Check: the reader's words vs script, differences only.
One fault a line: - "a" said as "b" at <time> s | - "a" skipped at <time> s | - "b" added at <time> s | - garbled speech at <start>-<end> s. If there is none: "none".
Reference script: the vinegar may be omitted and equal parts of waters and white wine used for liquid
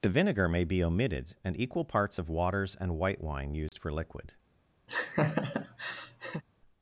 none